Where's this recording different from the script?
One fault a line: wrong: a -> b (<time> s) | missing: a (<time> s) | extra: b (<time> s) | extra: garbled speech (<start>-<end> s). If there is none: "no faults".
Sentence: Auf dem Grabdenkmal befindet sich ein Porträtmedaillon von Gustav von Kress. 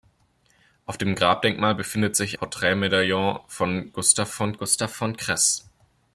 wrong: ein Porträtmedaillon -> Porträtmedaillon von Gustav (2.3 s)